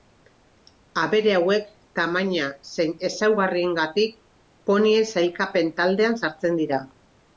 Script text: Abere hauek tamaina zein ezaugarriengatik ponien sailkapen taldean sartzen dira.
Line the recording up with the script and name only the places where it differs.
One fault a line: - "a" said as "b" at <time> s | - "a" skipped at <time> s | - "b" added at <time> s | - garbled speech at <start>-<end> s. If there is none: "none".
none